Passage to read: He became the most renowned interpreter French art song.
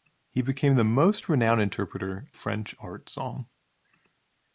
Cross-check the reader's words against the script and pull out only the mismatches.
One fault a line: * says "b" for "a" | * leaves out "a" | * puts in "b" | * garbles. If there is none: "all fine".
all fine